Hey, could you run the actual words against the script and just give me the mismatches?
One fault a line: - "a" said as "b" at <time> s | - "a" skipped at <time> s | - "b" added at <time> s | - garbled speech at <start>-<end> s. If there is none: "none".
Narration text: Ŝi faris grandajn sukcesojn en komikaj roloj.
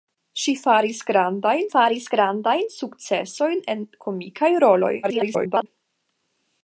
- "faris grandajn" added at 1.7 s
- garbled speech at 5.0-5.7 s